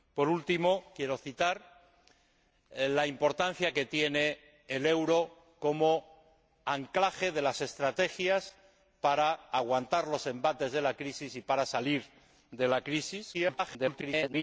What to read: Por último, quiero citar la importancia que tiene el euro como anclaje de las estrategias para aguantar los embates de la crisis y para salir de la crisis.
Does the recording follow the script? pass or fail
fail